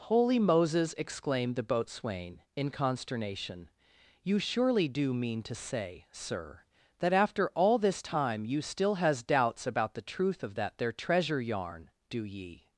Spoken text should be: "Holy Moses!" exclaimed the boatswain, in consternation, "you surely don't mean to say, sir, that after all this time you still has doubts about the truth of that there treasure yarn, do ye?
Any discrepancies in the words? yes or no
yes